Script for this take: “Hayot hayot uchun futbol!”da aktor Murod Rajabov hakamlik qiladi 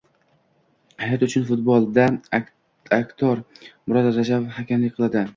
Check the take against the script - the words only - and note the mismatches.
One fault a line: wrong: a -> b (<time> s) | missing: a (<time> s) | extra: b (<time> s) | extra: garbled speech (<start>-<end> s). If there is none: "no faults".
missing: hayot (1.2 s)